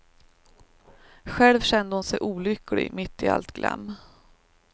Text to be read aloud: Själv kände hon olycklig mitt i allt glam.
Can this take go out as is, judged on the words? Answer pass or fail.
fail